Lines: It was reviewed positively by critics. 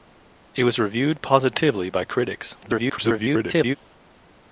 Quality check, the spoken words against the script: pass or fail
fail